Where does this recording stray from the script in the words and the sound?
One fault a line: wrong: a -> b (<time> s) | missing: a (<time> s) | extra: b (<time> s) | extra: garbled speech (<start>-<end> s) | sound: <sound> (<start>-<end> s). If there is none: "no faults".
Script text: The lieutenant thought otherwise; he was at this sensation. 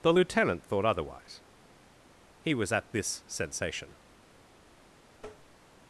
sound: tap (5.2-5.6 s)